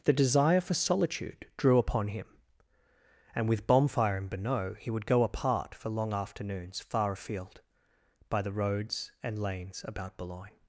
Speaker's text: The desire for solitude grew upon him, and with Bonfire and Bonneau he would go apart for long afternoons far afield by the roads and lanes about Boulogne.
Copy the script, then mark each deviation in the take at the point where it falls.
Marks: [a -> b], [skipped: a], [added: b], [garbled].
The desire for solitude [grew -> drew] upon him, and with Bonfire and Bonneau he would go apart for long afternoons far afield by the roads and lanes about Boulogne.